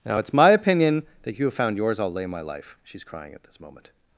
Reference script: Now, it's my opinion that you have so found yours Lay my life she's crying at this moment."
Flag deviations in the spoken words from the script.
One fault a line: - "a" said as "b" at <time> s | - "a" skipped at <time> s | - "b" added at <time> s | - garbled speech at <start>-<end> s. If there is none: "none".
- "so" skipped at 1.5 s
- "I'll" added at 2.0 s